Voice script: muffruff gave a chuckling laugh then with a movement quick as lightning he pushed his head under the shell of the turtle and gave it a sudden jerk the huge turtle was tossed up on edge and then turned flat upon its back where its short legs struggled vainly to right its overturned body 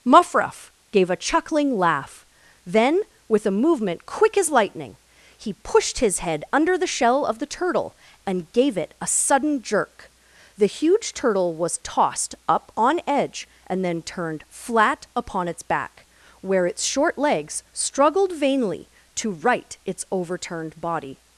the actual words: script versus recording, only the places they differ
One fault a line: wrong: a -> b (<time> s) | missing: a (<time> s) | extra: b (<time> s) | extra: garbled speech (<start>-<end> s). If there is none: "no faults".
no faults